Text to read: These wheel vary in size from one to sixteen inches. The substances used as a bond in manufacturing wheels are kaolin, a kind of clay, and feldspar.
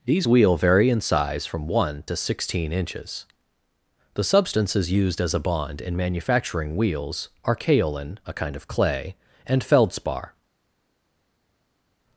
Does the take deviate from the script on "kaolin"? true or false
false